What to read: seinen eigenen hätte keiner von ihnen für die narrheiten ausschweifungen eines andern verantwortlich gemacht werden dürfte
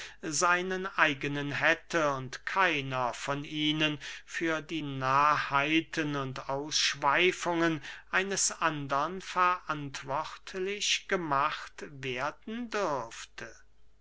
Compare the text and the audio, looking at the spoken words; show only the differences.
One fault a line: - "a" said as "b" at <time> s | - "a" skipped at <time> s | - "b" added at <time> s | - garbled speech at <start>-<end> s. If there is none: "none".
- "und" added at 2.1 s
- "und" added at 6.2 s